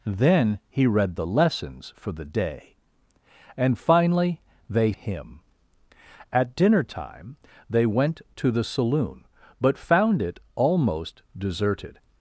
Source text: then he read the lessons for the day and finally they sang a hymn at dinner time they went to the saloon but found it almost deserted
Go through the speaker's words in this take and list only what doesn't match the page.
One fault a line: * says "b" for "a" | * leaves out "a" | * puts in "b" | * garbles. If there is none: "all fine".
* leaves out "sang a"